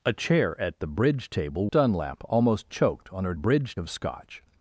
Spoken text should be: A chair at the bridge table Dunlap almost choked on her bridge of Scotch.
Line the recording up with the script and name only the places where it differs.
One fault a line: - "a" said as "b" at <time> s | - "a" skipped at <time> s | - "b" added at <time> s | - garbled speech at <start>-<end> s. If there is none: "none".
none